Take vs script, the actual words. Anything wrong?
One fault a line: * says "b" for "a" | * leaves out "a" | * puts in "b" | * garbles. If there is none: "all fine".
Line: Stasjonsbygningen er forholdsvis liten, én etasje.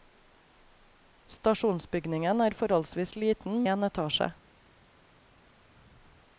all fine